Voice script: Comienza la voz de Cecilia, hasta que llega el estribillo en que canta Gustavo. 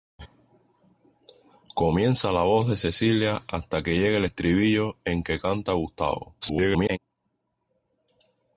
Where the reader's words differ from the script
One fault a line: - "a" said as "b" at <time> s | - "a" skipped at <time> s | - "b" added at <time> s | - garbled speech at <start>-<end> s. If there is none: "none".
- garbled speech at 6.4-7.0 s